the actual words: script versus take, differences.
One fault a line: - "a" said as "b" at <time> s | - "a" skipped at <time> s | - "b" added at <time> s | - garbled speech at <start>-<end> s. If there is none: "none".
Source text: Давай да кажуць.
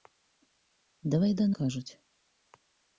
none